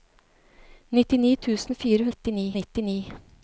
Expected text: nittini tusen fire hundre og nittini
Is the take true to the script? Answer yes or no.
no